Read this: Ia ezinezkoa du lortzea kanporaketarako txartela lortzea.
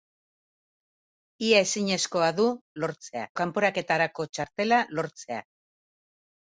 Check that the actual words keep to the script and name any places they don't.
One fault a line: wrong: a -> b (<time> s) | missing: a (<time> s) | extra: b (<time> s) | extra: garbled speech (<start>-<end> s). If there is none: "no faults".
no faults